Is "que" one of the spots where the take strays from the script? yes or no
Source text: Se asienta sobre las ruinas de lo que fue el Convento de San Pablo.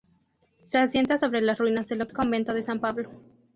yes